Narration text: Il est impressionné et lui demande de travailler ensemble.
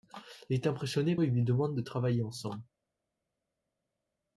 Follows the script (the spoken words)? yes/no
yes